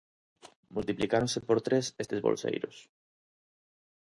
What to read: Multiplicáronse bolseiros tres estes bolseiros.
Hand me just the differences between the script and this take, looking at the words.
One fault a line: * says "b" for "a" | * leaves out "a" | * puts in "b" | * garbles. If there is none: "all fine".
* says "por" for "bolseiros"